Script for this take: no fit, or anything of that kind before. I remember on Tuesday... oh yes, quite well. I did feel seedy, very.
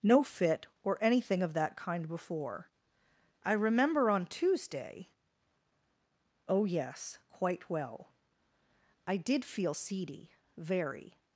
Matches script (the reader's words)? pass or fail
pass